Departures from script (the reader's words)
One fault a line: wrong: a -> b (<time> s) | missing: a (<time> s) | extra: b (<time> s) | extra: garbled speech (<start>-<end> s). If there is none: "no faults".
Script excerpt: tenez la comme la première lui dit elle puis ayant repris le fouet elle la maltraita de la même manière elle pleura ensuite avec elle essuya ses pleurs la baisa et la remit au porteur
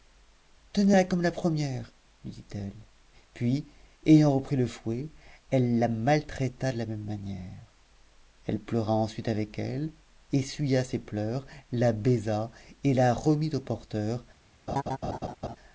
no faults